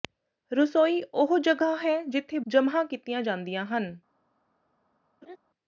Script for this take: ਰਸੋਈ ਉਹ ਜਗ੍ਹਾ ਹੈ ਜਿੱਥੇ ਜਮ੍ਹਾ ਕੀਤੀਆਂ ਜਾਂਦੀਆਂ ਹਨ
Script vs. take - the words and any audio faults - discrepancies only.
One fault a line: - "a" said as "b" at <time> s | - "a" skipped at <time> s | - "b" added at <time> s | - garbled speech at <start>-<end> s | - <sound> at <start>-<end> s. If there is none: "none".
- laugh at 5.2-5.4 s